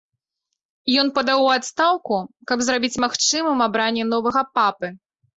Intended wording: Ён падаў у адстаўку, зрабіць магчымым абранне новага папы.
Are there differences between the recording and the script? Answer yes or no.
yes